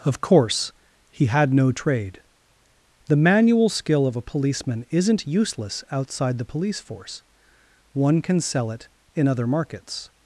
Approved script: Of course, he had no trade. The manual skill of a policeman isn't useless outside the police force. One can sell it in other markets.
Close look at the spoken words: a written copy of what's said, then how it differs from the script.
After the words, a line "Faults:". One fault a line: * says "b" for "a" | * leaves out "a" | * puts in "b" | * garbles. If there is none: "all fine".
Of course, he had no trade. The manual skill of a policeman isn't useless outside the police force. One can sell it in other markets.
Faults:
all fine